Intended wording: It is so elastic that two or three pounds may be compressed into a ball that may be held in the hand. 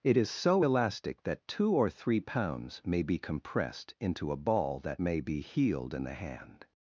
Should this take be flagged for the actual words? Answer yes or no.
yes